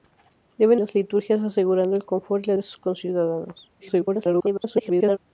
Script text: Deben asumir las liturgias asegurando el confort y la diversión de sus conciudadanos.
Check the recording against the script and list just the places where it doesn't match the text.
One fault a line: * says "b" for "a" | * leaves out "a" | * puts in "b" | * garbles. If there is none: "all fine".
* leaves out "asumir"
* leaves out "diversión"
* garbles